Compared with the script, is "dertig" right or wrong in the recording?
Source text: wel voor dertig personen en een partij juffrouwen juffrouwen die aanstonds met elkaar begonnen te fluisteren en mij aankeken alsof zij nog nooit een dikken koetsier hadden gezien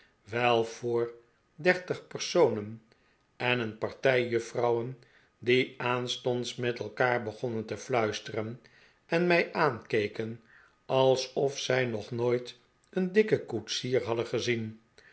right